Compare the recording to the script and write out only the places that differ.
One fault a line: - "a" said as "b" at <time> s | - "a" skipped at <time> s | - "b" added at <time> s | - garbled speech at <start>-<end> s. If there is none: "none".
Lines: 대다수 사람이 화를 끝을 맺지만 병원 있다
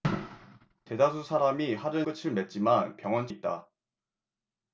none